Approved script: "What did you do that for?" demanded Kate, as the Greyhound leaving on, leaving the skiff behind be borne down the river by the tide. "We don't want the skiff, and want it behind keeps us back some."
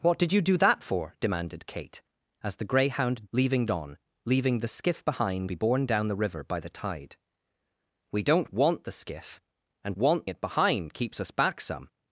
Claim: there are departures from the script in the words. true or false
false